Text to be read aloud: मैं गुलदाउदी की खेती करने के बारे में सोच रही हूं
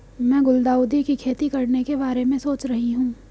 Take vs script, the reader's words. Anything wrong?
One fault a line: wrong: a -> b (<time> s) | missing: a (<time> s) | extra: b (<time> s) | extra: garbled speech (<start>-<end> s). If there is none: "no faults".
no faults